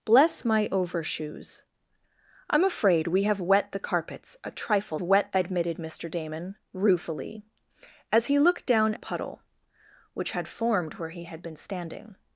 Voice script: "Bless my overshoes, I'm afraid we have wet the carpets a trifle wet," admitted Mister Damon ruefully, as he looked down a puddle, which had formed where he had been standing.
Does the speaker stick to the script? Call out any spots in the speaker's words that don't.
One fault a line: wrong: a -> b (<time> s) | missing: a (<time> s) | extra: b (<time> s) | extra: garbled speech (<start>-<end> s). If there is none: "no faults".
no faults